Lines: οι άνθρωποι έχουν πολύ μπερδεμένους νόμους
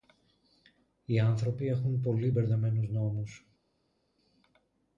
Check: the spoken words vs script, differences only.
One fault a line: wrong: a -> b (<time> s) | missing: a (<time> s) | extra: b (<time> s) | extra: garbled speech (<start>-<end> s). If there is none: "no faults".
no faults